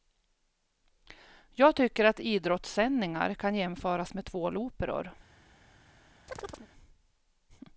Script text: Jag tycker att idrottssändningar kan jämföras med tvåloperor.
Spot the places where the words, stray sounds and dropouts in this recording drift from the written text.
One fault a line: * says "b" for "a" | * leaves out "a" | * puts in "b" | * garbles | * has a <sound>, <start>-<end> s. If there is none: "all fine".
* has a chirp, 6.3-6.7 s